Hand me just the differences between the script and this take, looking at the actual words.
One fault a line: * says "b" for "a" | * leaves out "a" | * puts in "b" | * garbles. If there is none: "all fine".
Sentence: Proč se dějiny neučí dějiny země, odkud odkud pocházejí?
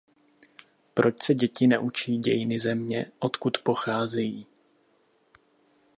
* says "děti" for "dějiny"
* leaves out "odkud"